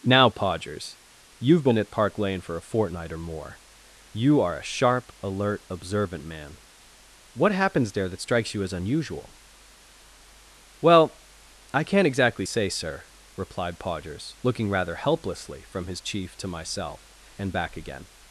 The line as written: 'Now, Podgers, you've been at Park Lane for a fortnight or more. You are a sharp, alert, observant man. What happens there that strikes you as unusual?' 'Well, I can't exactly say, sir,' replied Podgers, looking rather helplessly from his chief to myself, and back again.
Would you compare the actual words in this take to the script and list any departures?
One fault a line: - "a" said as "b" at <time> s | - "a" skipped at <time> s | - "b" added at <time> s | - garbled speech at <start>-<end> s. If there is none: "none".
none